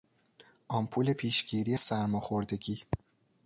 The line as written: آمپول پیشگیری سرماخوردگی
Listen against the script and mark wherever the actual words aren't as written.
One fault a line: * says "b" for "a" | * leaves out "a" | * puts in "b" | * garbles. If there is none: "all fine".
all fine